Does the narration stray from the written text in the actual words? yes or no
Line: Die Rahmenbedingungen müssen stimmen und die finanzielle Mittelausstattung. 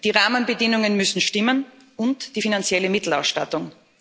no